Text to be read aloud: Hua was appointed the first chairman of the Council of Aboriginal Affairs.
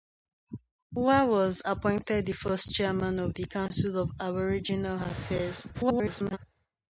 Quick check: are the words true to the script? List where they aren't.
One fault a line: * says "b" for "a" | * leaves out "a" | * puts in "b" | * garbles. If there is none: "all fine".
* garbles